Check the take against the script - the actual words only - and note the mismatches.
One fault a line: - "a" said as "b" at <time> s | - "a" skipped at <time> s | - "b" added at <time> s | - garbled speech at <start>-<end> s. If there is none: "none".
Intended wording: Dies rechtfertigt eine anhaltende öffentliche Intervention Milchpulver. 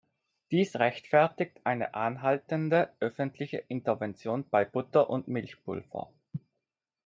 - "bei Butter und" added at 4.5 s